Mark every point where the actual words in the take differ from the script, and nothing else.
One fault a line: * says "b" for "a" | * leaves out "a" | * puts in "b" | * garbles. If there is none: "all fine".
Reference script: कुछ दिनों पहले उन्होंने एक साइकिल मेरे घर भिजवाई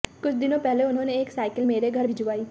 all fine